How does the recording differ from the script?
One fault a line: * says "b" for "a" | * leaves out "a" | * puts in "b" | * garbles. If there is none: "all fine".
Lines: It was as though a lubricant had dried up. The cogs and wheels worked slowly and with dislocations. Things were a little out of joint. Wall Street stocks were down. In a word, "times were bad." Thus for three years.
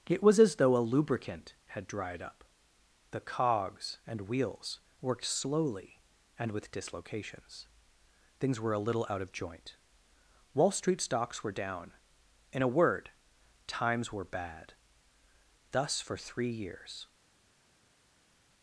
all fine